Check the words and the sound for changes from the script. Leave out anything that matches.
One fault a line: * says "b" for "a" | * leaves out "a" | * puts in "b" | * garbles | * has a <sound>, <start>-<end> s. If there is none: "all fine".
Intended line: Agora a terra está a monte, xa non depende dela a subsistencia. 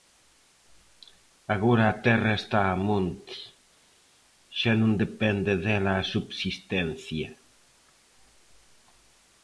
all fine